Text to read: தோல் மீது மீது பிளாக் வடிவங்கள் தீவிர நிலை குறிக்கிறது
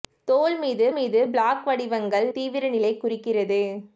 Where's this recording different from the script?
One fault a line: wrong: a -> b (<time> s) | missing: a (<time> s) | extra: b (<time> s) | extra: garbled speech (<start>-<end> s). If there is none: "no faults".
no faults